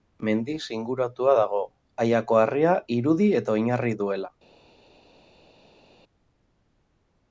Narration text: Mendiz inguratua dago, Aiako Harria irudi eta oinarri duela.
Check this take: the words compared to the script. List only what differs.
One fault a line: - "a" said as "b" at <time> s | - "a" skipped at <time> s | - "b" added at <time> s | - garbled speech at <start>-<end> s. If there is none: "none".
none